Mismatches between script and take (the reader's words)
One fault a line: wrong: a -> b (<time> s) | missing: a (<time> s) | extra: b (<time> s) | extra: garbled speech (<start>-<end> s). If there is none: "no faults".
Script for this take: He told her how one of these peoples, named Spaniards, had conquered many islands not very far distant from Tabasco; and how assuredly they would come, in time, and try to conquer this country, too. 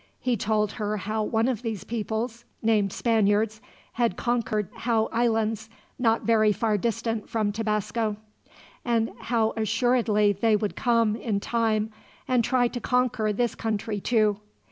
wrong: many -> how (4.7 s)